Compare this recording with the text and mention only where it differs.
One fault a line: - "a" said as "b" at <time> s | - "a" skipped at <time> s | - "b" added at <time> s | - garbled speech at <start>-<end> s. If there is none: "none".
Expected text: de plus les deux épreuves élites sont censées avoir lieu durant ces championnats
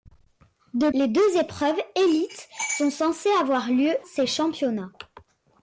- "plus" skipped at 0.9 s
- "durant" skipped at 3.9 s